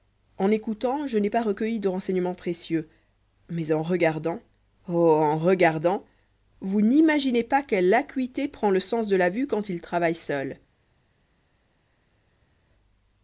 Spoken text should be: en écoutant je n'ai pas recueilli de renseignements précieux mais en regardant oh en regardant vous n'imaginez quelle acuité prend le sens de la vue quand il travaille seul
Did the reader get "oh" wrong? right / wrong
right